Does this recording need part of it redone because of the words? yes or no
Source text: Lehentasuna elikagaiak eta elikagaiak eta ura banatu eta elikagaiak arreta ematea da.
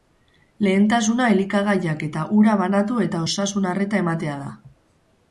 yes